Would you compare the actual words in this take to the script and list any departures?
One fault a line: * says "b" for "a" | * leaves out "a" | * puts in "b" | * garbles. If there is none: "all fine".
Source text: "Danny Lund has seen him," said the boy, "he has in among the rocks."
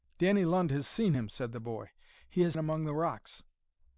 all fine